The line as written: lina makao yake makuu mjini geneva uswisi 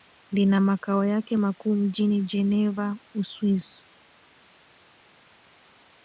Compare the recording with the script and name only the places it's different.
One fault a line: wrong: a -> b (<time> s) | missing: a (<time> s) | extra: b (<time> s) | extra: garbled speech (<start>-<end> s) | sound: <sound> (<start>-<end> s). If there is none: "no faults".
no faults